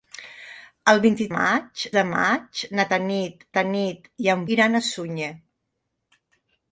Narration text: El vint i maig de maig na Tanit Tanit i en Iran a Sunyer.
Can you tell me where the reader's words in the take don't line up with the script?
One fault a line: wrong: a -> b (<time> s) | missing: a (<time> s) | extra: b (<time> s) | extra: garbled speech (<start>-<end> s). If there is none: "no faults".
no faults